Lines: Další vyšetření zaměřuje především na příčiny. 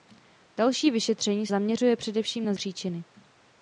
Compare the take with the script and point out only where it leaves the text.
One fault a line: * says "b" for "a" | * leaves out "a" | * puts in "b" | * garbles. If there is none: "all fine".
all fine